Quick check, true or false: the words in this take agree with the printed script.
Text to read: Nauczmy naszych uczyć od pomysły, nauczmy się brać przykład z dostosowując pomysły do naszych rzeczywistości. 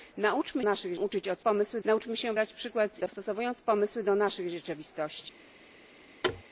true